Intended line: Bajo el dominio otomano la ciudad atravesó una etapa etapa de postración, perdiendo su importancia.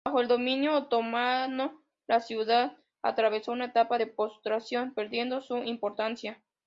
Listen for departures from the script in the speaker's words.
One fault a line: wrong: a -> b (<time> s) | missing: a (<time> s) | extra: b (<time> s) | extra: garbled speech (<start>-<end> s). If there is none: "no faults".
missing: etapa (4.0 s)